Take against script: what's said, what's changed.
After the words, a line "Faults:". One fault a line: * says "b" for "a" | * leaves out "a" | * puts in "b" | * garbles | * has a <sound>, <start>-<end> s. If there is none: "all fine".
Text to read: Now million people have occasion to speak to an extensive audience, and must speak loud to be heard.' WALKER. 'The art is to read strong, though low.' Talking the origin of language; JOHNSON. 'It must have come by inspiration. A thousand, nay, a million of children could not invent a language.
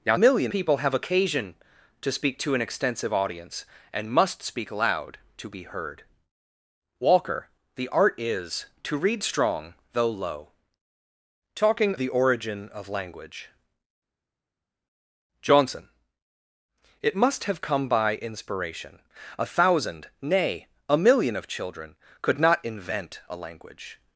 Now million people have occasion to speak to an extensive audience, and must speak loud to be heard.' WALKER. 'The art is to read strong, though low.' Talking the origin of language; JOHNSON. 'It must have come by inspiration. A thousand, nay, a million of children could not invent a language.
Faults:
all fine